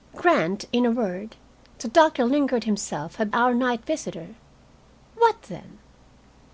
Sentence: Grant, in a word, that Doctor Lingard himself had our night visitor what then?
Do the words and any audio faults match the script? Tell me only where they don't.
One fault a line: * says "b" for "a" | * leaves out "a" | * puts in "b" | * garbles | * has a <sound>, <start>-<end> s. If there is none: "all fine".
all fine